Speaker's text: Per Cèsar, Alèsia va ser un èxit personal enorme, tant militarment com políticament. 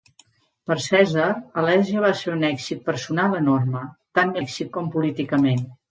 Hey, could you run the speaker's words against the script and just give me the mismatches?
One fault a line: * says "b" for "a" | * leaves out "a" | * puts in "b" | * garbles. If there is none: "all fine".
* says "èxit" for "militarment"